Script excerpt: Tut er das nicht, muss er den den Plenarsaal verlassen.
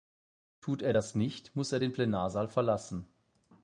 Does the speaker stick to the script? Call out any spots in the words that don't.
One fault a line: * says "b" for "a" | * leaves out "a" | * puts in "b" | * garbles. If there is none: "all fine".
* leaves out "den"